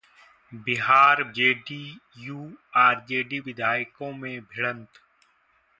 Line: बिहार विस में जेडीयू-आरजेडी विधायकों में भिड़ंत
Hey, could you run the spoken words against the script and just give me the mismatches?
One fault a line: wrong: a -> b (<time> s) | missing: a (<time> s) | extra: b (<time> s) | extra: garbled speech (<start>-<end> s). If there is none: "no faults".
missing: विस में (1.2 s)